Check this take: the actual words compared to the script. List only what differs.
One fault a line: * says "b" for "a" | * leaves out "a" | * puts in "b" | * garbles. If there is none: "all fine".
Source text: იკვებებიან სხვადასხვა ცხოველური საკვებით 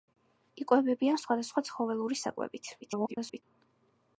* garbles